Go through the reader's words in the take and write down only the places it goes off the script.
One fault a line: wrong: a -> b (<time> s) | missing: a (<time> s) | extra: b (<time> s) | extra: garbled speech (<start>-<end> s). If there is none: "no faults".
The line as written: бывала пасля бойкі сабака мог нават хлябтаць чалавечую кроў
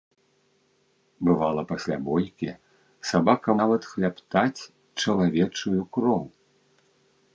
missing: мог (3.5 s)